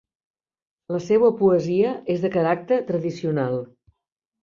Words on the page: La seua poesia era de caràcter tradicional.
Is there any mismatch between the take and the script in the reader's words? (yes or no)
yes